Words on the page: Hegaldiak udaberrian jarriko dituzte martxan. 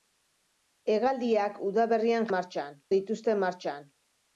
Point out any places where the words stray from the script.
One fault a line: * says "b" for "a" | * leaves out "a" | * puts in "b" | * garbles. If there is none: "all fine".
* says "martxan" for "jarriko"